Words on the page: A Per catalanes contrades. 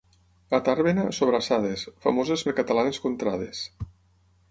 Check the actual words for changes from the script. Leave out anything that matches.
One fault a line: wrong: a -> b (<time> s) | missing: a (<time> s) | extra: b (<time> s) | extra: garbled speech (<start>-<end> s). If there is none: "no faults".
extra: Tàrbena sobrassades famoses (0.7 s)